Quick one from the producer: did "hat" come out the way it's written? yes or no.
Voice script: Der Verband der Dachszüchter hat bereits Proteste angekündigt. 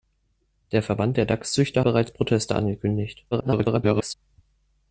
no